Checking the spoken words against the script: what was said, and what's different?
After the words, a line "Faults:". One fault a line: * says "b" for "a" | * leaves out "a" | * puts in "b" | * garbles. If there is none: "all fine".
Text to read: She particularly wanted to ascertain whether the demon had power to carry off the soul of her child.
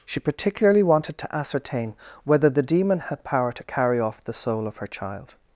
She particularly wanted to ascertain whether the demon had power to carry off the soul of her child.
Faults:
all fine